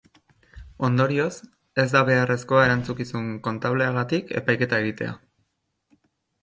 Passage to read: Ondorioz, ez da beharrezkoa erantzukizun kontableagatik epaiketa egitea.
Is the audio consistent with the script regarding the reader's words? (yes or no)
yes